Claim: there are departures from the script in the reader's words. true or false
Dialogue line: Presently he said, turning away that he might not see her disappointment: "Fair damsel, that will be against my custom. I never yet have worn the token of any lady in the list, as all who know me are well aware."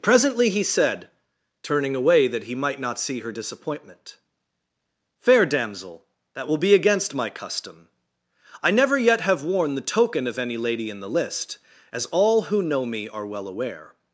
false